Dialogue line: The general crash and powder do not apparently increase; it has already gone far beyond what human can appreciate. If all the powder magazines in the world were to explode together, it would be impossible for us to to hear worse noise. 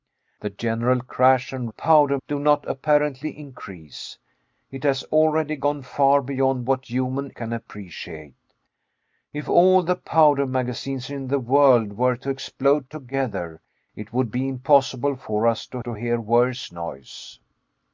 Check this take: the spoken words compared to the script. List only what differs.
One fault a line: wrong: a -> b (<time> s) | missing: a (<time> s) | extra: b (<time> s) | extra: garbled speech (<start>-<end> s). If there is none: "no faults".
no faults